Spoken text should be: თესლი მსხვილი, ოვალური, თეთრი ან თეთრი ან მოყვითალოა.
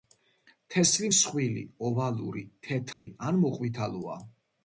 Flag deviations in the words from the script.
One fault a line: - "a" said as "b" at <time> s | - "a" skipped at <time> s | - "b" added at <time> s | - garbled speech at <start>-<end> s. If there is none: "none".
- "თეთრი ან" skipped at 3.4 s